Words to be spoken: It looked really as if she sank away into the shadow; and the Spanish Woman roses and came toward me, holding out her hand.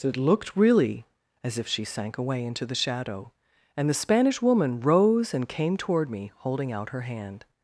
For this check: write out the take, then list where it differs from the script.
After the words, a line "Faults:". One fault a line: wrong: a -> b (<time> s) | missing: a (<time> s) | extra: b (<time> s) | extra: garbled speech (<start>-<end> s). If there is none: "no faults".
It looked really as if she sank away into the shadow; and the Spanish Woman rose and came toward me, holding out her hand.
Faults:
wrong: roses -> rose (4.8 s)